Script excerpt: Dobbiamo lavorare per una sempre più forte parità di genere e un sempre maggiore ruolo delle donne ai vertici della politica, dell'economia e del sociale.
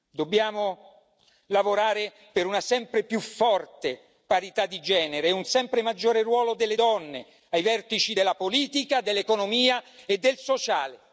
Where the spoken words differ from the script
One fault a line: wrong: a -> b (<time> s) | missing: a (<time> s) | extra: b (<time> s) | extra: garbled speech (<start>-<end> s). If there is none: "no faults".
no faults